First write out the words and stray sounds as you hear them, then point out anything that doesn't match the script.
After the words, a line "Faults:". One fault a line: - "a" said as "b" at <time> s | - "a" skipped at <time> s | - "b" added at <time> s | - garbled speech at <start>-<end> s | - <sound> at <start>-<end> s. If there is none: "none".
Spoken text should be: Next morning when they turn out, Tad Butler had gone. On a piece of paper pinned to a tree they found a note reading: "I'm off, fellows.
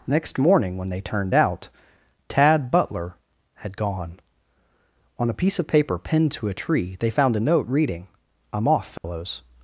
Next morning when they turned out, Tad Butler had gone. On a piece of paper pinned to a tree they found a note reading: "I'm off, fellows.
Faults:
- "turn" said as "turned" at 1.0 s
- dropout at 9.0-9.0 s